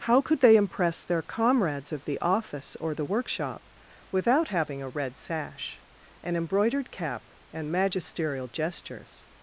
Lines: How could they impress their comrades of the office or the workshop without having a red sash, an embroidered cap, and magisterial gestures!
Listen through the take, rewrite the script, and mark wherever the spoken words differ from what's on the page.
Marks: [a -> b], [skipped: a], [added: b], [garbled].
How could they impress their comrades of the office or the workshop without having a red sash, an embroidered cap, and magisterial gestures!